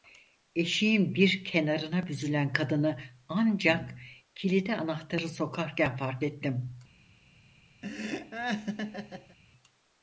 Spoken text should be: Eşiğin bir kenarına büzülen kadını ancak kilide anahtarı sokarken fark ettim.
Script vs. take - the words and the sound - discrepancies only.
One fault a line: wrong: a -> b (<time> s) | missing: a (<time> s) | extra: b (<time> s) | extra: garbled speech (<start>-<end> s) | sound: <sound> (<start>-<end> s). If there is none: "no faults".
sound: laugh (7.8-9.4 s)